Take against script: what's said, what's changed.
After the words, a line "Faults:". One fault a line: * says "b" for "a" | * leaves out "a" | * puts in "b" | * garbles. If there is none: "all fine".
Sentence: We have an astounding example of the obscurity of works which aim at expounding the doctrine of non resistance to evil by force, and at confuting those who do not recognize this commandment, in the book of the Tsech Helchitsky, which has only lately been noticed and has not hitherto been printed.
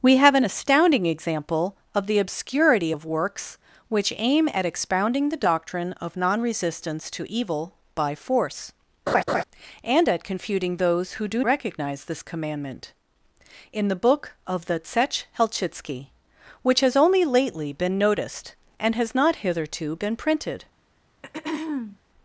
We have an astounding example of the obscurity of works which aim at expounding the doctrine of non resistance to evil by force, and at confuting those who do recognize this commandment, in the book of the Tsech Helchitsky, which has only lately been noticed and has not hitherto been printed.
Faults:
* leaves out "not"